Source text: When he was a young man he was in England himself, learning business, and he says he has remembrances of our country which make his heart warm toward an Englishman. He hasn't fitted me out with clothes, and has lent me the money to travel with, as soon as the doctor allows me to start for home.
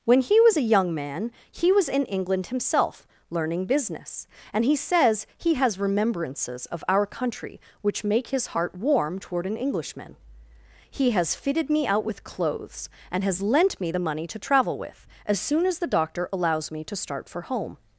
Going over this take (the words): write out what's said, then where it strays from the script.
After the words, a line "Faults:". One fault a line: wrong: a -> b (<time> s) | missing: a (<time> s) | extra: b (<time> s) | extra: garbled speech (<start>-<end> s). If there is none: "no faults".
When he was a young man he was in England himself, learning business, and he says he has remembrances of our country which make his heart warm toward an Englishman. He has fitted me out with clothes, and has lent me the money to travel with, as soon as the doctor allows me to start for home.
Faults:
wrong: hasn't -> has (11.1 s)